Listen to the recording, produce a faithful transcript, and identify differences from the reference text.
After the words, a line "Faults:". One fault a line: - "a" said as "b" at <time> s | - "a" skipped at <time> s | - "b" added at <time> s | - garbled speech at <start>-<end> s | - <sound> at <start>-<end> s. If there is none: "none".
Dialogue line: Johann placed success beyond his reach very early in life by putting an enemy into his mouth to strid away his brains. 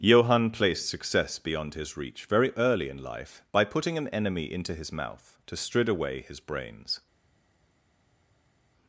Johann placed success beyond his reach very early in life by putting an enemy into his mouth to strid away his brains.
Faults:
none